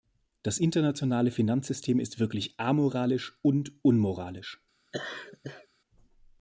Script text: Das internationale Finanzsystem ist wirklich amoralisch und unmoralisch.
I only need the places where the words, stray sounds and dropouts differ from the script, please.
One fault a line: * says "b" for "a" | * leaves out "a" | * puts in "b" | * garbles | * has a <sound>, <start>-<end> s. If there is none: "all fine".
* has a laugh, 4.9-5.7 s